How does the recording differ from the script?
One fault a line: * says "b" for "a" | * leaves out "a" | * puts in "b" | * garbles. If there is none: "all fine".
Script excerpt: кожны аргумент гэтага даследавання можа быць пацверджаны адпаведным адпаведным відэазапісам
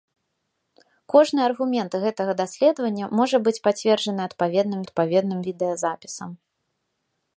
all fine